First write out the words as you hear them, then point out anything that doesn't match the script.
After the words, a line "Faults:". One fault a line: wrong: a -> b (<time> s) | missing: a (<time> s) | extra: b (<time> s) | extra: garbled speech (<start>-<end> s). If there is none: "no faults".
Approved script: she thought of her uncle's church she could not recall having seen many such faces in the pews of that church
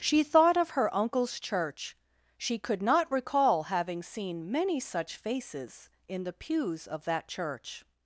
she thought of her uncle's church she could not recall having seen many such faces in the pews of that church
Faults:
no faults